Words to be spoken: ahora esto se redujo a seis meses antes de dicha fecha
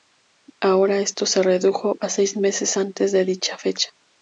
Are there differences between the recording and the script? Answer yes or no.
no